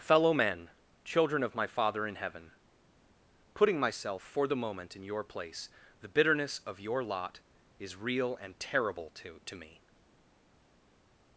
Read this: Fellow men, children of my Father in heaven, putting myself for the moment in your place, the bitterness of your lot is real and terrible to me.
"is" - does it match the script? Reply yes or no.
yes